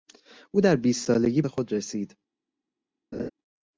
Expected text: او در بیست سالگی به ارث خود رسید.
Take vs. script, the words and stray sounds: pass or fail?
fail